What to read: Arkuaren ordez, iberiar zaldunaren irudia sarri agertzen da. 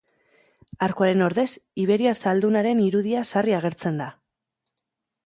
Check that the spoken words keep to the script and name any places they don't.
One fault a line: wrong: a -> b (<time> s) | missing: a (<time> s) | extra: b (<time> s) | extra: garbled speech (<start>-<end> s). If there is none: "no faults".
no faults